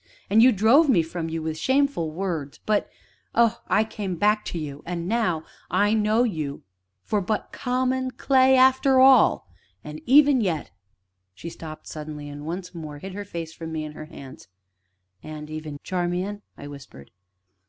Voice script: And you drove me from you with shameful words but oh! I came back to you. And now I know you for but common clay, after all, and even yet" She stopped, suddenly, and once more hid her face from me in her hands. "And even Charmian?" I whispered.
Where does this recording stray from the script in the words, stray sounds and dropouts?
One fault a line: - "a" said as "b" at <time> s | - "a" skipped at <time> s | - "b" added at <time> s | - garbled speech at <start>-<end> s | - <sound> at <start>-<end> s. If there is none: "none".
none